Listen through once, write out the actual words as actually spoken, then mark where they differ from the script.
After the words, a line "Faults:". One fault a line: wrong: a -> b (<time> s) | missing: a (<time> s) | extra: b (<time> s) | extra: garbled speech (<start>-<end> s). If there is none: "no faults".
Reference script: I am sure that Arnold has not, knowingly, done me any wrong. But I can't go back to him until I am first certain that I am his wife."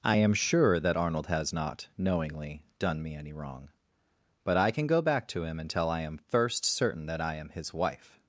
I am sure that Arnold has not, knowingly, done me any wrong. But I can go back to him until I am first certain that I am his wife."
Faults:
wrong: can't -> can (4.7 s)